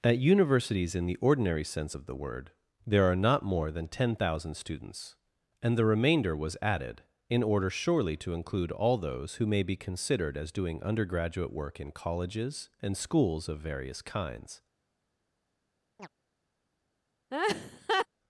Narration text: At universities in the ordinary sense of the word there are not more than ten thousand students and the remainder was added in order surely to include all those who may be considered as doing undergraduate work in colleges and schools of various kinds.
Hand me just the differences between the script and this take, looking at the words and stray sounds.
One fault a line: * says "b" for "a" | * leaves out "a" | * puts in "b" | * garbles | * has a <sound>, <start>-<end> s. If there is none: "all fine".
* has a chirp, 16.0-16.1 s
* has a laugh, 17.3-18.1 s